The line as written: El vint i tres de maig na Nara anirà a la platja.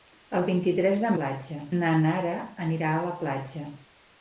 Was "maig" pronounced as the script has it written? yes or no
no